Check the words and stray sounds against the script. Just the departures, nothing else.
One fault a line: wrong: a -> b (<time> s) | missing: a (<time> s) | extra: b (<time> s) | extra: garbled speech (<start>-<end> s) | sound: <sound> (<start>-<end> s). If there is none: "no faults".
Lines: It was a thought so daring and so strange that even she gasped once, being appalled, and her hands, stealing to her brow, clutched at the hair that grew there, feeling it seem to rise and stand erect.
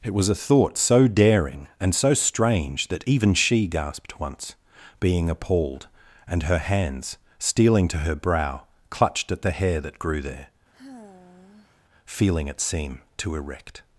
sound: sigh (10.7-11.8 s)
missing: rise and stand (13.3 s)